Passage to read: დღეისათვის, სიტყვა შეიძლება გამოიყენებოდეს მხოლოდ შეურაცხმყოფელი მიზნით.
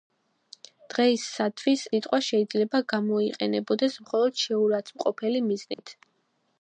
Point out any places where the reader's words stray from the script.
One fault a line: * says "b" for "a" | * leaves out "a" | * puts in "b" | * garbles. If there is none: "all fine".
all fine